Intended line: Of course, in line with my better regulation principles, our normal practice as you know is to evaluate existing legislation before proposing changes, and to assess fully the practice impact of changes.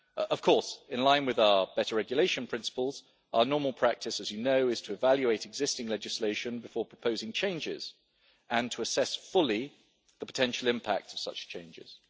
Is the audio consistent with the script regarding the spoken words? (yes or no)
no